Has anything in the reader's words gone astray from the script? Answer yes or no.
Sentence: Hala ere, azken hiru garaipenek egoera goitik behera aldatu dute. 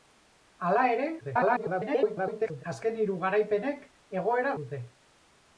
yes